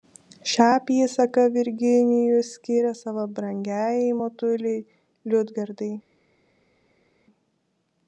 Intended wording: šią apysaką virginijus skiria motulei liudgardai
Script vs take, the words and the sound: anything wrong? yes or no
yes